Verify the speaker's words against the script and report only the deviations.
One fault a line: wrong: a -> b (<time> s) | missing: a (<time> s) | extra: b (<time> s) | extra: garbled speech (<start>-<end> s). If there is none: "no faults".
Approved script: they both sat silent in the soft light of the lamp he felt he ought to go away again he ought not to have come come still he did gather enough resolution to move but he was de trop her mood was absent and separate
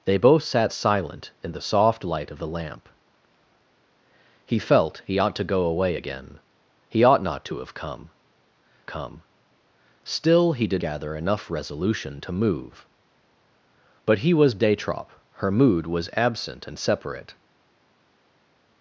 no faults